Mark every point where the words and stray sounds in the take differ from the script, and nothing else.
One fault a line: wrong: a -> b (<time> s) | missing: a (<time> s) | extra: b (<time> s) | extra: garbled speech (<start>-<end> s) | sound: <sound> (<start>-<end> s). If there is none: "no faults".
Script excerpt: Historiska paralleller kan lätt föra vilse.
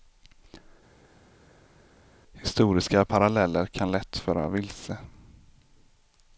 no faults